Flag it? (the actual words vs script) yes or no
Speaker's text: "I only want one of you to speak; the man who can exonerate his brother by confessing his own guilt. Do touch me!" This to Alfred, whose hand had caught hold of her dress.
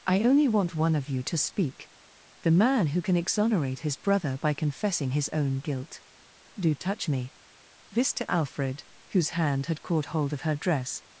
no